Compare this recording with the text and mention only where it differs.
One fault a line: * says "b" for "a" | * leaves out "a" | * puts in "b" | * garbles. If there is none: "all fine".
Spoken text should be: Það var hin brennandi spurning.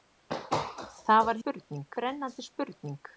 * says "spurning" for "hin"